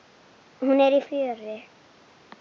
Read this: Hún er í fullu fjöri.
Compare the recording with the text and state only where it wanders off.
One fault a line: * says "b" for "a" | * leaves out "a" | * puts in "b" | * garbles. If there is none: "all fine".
* leaves out "fullu"